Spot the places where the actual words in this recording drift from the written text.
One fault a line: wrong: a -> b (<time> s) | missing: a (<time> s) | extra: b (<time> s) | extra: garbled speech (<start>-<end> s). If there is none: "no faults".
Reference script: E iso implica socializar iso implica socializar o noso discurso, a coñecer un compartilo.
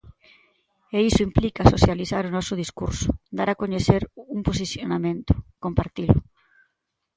missing: iso implica socializar (2.2 s)
extra: dar (3.4 s)
extra: posicionamento (4.5 s)